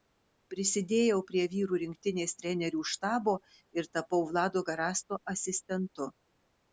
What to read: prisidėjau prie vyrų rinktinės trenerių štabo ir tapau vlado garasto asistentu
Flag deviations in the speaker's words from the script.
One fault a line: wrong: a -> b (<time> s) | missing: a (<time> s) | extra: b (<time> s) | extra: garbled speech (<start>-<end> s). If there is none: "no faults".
no faults